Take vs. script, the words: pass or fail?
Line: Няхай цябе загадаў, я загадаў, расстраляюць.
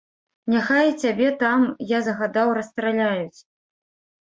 fail